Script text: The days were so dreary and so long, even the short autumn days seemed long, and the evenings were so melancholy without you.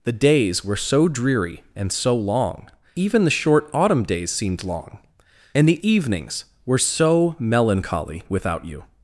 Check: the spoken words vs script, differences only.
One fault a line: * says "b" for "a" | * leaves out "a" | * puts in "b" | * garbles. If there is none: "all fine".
all fine